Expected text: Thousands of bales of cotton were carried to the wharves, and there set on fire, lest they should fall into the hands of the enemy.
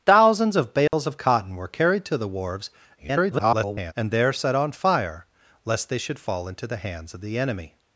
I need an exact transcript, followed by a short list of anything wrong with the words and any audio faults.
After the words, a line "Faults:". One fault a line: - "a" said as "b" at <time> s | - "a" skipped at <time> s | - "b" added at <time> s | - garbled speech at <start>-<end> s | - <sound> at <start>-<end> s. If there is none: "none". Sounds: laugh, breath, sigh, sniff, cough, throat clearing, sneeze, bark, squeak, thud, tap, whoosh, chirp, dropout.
Thousands of bales of cotton were carried to the wharves, [garbled] and there set on fire, lest they should fall into the hands of the enemy.
Faults:
- dropout at 0.9-0.9 s
- garbled speech at 3.0-3.9 s